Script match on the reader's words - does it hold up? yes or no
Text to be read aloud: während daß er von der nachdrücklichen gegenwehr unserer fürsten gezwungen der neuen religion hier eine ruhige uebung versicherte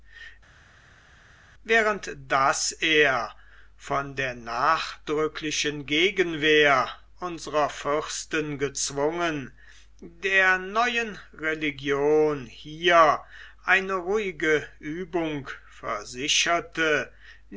yes